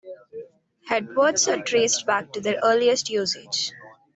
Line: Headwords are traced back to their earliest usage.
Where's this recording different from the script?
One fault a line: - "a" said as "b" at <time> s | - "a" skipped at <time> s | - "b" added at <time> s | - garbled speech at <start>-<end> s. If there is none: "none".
none